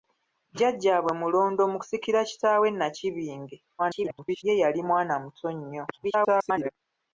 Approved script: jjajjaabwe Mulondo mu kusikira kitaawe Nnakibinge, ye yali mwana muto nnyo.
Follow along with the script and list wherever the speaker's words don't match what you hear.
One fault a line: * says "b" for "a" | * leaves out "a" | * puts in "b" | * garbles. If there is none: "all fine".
* garbles
* garbles